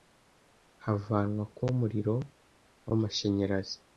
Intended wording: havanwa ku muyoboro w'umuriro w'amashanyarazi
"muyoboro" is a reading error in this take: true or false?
true